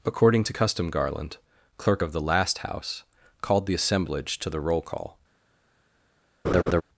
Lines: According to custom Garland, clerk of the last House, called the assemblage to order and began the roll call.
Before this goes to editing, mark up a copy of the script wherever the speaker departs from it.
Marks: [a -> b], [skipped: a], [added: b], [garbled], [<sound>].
According to custom Garland, clerk of the last House, called the assemblage to [skipped: order and began] the roll call. [laugh]